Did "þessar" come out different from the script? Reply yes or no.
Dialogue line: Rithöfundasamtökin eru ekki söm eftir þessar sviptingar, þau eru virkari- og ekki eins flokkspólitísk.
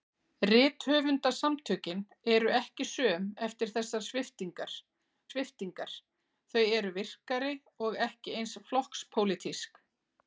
no